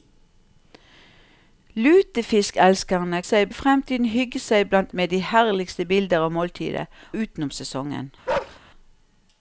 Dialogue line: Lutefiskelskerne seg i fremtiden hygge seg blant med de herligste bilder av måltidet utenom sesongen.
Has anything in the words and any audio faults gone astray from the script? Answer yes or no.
yes